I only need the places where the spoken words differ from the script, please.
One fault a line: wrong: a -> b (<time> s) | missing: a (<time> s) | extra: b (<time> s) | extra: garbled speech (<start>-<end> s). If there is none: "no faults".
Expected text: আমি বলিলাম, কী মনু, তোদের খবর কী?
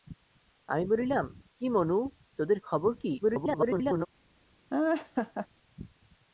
extra: garbled speech (3.2-4.1 s)